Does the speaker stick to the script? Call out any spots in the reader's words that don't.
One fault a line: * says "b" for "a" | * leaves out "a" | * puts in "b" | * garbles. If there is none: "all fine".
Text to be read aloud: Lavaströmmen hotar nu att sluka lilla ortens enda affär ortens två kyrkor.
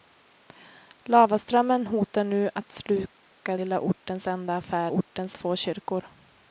all fine